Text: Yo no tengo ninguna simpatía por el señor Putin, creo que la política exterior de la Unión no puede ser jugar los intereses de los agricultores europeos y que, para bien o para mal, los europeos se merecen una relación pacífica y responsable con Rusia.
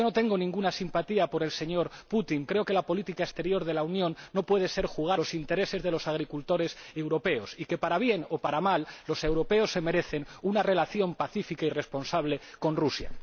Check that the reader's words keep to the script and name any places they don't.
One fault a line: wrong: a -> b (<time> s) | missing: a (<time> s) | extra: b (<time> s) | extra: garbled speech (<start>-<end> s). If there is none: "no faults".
no faults